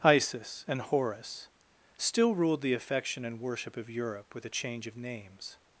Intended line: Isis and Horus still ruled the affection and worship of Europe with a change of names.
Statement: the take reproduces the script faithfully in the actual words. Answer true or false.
true